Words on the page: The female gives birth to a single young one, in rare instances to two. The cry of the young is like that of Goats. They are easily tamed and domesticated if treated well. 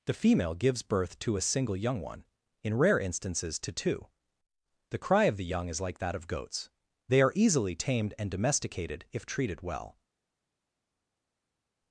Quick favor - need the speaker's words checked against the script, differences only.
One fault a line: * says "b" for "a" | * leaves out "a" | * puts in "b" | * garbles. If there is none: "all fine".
all fine